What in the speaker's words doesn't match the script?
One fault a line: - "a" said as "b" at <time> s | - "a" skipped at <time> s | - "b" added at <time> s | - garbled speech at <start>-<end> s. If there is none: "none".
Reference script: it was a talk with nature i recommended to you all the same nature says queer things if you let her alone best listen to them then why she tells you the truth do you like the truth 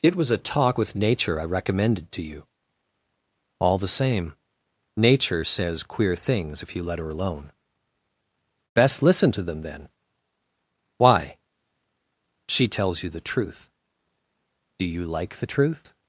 none